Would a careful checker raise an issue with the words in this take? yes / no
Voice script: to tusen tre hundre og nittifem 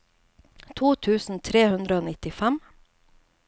no